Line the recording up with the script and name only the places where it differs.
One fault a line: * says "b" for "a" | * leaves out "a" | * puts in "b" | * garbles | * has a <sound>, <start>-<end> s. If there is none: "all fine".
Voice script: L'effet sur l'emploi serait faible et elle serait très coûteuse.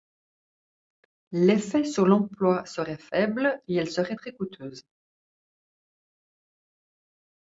all fine